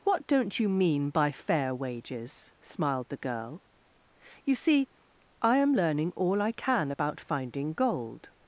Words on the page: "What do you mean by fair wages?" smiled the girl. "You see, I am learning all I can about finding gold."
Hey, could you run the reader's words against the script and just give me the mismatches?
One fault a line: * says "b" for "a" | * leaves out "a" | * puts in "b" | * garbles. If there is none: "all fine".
* says "don't" for "do"